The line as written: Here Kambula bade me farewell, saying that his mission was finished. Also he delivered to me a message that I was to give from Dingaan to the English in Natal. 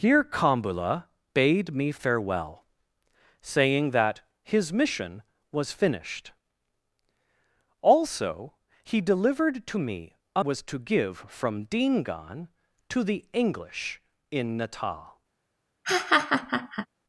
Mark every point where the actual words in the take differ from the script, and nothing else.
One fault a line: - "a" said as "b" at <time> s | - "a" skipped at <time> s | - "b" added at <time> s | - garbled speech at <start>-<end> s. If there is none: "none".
- "message that I" skipped at 10.4 s